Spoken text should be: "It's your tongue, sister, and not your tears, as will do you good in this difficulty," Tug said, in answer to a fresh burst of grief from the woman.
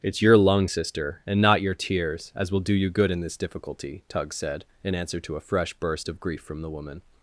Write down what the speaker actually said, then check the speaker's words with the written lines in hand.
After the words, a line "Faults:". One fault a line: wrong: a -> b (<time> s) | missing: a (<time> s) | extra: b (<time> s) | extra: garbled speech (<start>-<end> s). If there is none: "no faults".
"It's your lung, sister, and not your tears, as will do you good in this difficulty," Tug said, in answer to a fresh burst of grief from the woman.
Faults:
wrong: tongue -> lung (0.3 s)